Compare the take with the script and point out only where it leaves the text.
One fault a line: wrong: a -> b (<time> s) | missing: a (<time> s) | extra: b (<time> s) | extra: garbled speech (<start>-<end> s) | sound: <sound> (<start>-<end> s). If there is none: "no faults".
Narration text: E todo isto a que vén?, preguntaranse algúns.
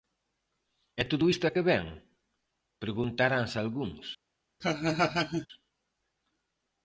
sound: laugh (4.6-5.5 s)